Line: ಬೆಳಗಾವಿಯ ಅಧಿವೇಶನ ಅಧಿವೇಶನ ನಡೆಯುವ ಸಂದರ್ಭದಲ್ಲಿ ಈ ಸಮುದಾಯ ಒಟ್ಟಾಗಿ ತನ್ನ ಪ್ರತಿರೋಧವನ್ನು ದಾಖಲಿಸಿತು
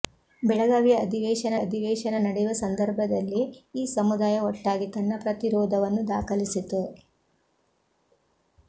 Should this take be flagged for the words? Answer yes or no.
no